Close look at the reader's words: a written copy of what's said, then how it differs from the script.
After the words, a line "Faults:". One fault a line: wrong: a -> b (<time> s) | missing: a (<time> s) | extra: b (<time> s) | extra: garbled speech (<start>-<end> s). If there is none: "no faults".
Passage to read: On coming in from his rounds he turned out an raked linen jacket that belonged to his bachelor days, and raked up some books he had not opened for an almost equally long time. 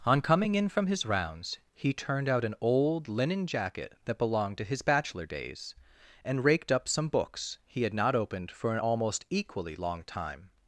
On coming in from his rounds he turned out an old linen jacket that belonged to his bachelor days, and raked up some books he had not opened for an almost equally long time.
Faults:
wrong: raked -> old (2.6 s)